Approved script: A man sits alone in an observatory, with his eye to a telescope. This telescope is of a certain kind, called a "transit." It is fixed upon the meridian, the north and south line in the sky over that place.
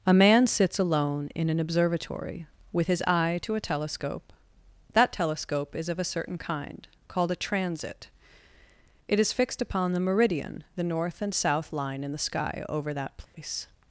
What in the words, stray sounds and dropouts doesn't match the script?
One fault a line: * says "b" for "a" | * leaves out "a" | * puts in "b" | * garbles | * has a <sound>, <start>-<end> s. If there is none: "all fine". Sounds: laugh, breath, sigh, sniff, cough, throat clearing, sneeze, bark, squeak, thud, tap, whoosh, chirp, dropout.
* says "That" for "This"
* has a dropout, 13.2-13.3 s